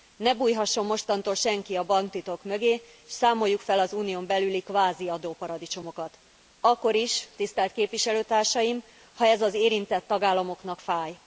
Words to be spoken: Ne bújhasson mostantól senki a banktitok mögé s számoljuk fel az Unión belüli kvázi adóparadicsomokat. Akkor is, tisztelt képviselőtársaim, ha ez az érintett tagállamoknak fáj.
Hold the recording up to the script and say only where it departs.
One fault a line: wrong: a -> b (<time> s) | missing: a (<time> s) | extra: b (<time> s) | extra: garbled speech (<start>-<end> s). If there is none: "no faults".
no faults